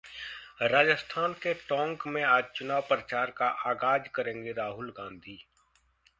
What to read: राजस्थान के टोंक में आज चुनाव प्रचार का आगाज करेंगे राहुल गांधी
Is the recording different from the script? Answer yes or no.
no